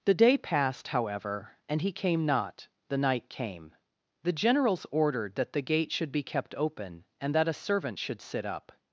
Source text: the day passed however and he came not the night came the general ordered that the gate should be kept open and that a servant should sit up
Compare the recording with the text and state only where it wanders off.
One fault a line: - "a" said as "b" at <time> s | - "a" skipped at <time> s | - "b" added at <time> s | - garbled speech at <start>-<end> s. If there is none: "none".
- "general" said as "generals" at 4.3 s